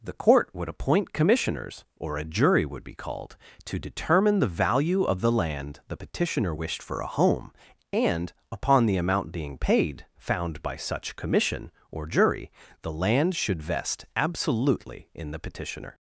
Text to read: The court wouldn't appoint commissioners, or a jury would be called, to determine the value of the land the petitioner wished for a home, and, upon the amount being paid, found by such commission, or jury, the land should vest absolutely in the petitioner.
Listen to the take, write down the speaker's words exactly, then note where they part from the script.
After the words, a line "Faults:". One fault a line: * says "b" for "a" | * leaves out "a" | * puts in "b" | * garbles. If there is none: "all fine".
The court would appoint commissioners, or a jury would be called, to determine the value of the land the petitioner wished for a home, and, upon the amount being paid, found by such commission, or jury, the land should vest absolutely in the petitioner.
Faults:
* says "would" for "wouldn't"